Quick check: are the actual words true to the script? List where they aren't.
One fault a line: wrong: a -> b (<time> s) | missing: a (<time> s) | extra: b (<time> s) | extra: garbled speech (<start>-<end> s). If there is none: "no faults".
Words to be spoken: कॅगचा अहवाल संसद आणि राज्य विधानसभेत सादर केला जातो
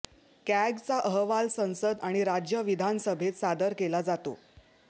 no faults